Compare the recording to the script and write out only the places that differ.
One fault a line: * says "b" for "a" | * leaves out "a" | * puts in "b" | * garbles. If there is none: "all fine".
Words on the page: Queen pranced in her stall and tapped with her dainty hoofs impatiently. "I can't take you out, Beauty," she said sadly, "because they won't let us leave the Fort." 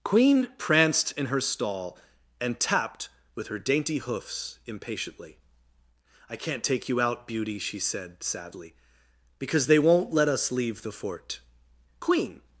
* puts in "Queen"